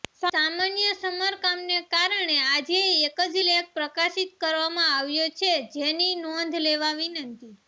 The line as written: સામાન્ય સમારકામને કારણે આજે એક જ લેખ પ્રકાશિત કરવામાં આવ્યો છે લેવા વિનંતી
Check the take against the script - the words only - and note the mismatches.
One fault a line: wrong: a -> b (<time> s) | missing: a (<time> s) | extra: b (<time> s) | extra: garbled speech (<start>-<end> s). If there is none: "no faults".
extra: જેની નોંધ (5.7 s)